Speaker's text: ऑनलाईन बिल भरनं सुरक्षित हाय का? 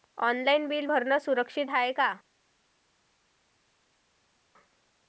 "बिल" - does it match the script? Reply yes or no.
yes